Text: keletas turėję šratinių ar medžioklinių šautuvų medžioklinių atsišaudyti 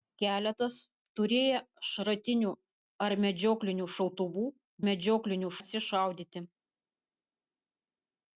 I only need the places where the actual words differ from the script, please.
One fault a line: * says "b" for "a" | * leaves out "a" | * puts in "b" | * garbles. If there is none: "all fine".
all fine